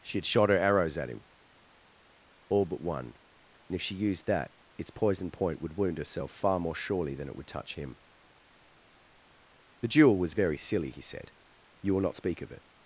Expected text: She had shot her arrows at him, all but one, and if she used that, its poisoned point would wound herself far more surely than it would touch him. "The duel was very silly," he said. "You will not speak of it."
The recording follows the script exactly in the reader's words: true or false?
true